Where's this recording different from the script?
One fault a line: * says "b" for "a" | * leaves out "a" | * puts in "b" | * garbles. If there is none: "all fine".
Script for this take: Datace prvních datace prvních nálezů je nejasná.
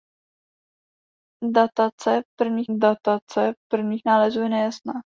all fine